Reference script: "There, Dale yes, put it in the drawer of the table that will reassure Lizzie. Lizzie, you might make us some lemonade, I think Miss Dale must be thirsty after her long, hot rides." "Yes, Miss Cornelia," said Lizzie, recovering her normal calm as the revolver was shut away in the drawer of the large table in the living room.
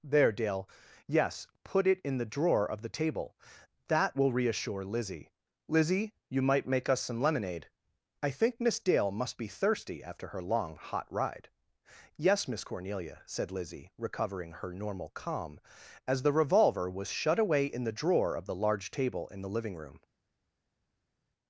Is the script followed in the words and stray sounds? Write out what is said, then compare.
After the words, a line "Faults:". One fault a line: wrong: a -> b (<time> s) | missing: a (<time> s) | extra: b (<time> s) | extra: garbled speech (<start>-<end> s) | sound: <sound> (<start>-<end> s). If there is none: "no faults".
"There, Dale yes, put it in the drawer of the table that will reassure Lizzie. Lizzie, you might make us some lemonade, I think Miss Dale must be thirsty after her long, hot ride." "Yes, Miss Cornelia," said Lizzie, recovering her normal calm as the revolver was shut away in the drawer of the large table in the living room.
Faults:
wrong: rides -> ride (11.1 s)